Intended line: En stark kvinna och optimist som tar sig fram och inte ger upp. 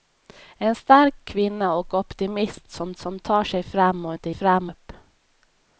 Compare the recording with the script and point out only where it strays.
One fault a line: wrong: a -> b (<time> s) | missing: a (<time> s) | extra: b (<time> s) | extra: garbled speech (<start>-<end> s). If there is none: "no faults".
extra: som (3.0 s)
wrong: ger -> fram (4.3 s)